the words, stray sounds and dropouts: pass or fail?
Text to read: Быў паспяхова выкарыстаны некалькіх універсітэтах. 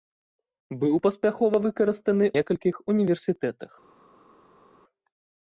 pass